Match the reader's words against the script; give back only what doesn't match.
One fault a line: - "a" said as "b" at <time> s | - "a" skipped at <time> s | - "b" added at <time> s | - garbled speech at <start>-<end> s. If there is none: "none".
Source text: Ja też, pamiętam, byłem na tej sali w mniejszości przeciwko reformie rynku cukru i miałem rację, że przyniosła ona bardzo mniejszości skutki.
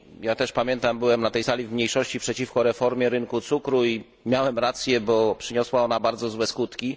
- "że" said as "bo" at 5.0 s
- "mniejszości" said as "złe" at 6.3 s